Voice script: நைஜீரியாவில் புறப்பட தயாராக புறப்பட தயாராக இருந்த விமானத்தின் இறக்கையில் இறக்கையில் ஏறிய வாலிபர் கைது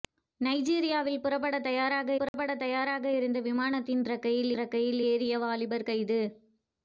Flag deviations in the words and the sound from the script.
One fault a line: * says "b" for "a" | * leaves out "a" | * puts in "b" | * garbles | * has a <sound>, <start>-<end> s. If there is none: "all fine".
* has a dropout, 2.3-2.3 s